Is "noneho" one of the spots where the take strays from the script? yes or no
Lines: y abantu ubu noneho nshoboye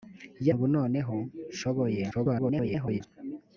no